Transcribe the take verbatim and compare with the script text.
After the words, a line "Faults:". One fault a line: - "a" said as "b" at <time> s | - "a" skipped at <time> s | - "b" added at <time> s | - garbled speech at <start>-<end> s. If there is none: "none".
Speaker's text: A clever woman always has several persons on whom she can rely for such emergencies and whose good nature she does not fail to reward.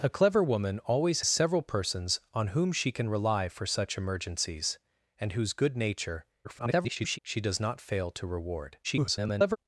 A clever woman always several persons on whom she can rely for such emergencies and whose good nature [garbled] she does not fail to reward. [garbled]
Faults:
- "has" skipped at 1.2 s
- garbled speech at 6.4-7.2 s
- garbled speech at 8.8-9.6 s